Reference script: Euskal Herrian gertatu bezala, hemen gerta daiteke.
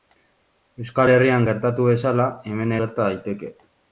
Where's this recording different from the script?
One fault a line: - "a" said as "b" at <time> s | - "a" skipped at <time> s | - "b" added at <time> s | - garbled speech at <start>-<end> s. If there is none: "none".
none